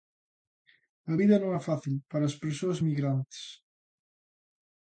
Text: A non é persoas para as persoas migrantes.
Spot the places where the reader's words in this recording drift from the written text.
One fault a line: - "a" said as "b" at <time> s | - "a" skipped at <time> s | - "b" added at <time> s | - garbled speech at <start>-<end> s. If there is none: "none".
- "vida" added at 1.2 s
- "persoas" said as "fácil" at 1.7 s